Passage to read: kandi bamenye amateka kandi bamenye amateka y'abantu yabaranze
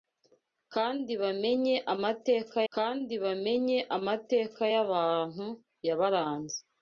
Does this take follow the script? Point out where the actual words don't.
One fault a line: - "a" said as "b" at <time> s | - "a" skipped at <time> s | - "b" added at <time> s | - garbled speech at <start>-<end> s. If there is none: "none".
none